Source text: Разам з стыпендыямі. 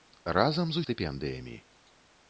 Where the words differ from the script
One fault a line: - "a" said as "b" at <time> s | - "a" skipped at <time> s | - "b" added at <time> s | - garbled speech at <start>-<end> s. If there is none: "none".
none